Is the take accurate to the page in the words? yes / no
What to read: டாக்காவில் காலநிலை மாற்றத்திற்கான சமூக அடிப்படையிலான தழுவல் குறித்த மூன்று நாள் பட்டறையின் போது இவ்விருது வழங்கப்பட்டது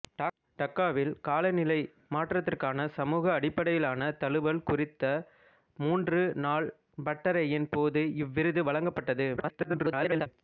no